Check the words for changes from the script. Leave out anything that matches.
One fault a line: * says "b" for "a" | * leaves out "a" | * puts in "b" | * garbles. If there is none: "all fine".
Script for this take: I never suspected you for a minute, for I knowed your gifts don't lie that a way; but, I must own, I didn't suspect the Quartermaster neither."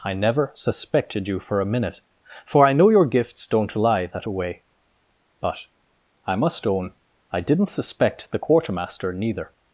* says "know" for "knowed"